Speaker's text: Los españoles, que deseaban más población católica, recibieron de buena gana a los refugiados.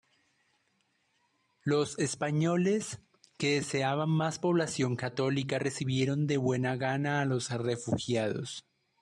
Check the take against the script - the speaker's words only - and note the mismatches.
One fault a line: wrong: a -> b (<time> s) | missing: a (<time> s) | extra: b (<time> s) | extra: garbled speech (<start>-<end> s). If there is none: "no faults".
no faults